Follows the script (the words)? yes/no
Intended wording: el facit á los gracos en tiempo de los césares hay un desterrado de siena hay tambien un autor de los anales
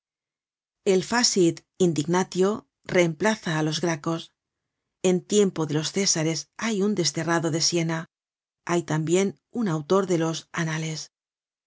no